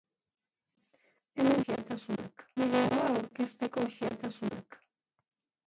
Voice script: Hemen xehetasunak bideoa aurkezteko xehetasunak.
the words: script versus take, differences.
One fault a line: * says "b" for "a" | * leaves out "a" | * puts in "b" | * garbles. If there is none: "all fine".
all fine